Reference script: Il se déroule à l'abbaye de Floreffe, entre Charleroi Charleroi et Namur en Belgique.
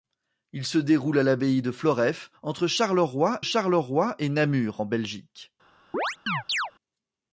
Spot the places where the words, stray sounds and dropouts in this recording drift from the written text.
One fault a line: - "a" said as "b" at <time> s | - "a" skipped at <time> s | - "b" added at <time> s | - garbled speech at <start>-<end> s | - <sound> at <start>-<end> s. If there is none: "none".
- chirp at 5.9-6.7 s